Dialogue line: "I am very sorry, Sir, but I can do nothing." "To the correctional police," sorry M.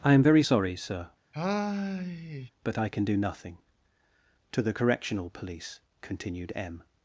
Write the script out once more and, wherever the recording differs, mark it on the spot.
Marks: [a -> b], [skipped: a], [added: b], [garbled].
"I am very sorry, Sir, but I can do nothing." "To the correctional police," [sorry -> continued] M.